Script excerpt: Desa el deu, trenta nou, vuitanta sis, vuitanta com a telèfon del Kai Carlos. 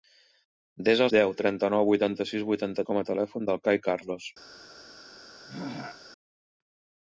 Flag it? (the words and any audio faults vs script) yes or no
yes